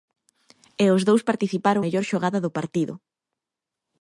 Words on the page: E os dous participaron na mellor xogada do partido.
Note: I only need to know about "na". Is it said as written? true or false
false